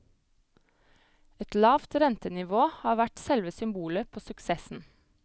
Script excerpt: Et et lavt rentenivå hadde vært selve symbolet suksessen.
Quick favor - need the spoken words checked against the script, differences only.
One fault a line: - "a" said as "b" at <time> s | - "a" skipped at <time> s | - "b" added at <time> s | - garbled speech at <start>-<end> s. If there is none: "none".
- "et" skipped at 1.6 s
- "hadde" said as "har" at 2.8 s
- "på" added at 4.1 s